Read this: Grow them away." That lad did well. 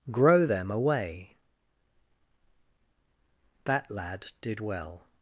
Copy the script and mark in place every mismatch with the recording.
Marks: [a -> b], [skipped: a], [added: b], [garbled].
Grow them away." That lad did well.